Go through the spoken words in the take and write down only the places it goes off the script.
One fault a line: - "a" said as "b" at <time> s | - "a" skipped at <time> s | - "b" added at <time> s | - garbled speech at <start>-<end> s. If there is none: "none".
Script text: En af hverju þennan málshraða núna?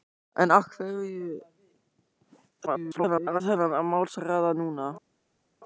- garbled speech at 2.7-3.4 s